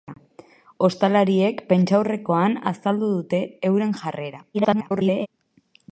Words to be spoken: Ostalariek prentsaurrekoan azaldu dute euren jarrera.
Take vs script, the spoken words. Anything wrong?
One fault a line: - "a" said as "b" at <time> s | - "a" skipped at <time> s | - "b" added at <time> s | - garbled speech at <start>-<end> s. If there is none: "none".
- garbled speech at 4.5-5.3 s